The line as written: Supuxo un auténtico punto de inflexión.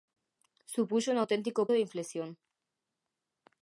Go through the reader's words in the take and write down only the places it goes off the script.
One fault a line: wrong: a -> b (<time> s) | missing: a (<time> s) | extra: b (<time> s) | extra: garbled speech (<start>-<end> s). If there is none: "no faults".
missing: punto (1.6 s)